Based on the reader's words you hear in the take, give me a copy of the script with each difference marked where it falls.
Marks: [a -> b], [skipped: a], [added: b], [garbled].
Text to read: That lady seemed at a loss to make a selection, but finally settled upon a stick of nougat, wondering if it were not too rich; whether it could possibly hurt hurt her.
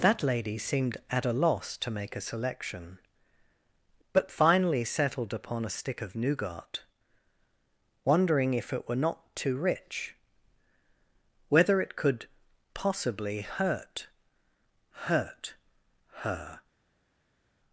That lady seemed at a loss to make a selection, but finally settled upon a stick of nougat, wondering if it were not too rich; whether it could possibly hurt hurt her.